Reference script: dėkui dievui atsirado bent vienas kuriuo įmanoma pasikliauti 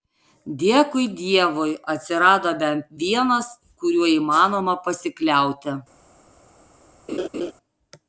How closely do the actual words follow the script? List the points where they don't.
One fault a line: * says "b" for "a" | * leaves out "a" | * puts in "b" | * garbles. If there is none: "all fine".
all fine